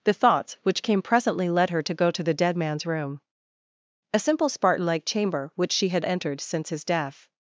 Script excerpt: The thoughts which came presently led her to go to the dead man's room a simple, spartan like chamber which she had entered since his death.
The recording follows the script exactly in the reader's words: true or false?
true